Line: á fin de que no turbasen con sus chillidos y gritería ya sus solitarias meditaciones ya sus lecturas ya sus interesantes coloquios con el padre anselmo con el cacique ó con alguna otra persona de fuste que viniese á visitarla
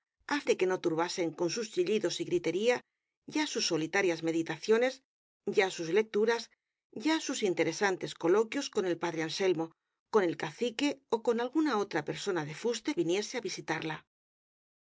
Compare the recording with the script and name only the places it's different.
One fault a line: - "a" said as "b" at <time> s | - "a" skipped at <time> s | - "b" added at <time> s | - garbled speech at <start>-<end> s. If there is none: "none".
- "fin" skipped at 0.4 s
- "que" skipped at 12.9 s